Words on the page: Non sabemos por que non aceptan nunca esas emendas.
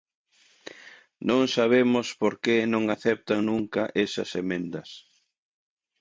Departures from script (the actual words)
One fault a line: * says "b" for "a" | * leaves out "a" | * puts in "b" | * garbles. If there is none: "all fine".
all fine